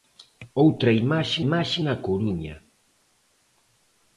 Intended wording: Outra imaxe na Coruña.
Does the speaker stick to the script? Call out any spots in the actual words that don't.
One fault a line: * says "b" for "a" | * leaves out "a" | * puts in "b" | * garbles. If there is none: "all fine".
* puts in "imaxe"